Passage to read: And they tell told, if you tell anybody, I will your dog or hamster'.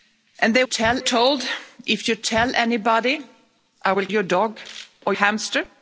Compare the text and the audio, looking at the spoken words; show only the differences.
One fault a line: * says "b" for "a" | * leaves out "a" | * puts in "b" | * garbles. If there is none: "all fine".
all fine